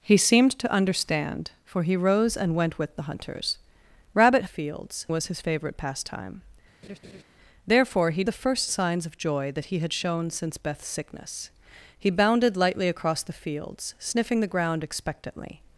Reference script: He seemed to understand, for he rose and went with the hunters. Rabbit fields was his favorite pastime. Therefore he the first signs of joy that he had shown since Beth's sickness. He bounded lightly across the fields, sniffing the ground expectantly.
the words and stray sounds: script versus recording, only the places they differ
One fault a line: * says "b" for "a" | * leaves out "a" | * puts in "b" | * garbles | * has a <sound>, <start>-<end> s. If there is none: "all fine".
* has a laugh, 6.8-7.2 s